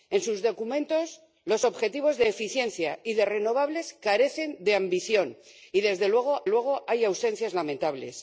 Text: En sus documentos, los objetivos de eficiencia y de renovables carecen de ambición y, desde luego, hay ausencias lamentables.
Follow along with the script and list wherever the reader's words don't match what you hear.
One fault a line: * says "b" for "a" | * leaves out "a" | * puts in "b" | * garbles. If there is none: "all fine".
* puts in "luego"